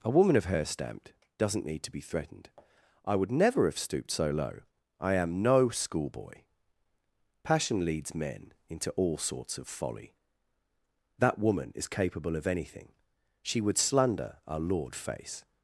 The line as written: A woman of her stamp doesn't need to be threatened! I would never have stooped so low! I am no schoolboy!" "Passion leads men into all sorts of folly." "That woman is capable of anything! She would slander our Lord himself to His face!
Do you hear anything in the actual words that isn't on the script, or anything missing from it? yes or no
yes